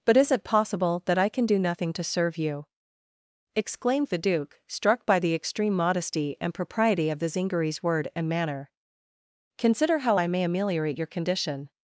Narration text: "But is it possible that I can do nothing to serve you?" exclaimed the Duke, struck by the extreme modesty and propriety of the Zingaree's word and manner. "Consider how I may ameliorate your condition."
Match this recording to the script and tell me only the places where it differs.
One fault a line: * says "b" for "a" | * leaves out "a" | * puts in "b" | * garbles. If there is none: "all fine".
all fine